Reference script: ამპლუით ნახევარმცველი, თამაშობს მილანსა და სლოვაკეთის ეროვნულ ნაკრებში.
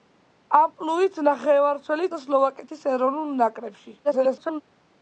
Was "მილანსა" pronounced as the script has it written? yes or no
no